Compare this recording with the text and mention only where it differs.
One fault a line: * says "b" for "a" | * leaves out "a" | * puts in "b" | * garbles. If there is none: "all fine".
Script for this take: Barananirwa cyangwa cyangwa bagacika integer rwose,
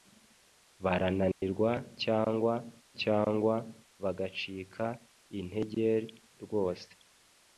all fine